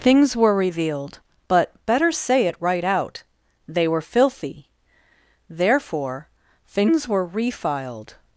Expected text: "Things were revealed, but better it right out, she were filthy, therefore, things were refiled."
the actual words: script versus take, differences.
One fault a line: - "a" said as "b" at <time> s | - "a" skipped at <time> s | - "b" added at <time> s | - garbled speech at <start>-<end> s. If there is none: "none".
- "say" added at 2.1 s
- "she" said as "they" at 3.7 s